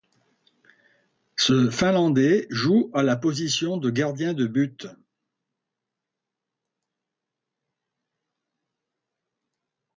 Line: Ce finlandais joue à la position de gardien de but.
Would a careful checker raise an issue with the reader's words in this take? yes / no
no